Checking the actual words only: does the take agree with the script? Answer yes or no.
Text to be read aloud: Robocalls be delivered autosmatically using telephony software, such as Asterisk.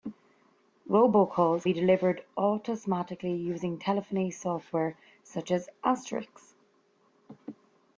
yes